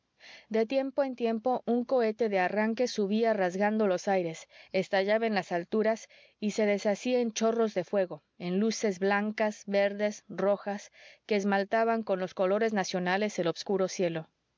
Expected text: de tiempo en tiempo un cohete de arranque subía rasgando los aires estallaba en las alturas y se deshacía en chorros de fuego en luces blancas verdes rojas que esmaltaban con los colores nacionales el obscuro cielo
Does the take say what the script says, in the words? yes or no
yes